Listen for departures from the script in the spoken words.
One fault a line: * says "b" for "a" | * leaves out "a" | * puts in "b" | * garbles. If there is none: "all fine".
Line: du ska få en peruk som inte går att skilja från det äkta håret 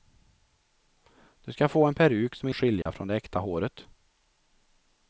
* leaves out "inte går"